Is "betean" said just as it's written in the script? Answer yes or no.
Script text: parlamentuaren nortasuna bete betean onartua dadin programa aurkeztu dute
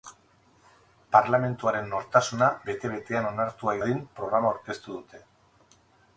yes